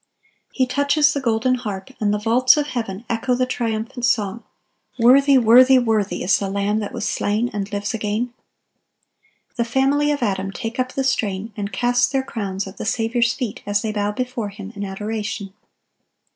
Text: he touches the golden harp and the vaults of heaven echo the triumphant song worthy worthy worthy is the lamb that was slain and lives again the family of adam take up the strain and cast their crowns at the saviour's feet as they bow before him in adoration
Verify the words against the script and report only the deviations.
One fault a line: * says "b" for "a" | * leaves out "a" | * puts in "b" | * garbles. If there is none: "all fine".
all fine